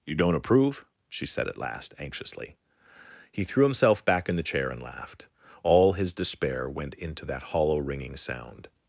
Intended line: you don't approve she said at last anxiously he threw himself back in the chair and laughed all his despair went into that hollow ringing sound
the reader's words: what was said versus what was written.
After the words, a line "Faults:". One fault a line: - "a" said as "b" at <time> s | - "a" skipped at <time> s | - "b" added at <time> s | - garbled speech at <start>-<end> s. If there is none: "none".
you don't approve she said at last anxiously he threw himself back in the chair and laughed all his despair went into that hollow ringing sound
Faults:
none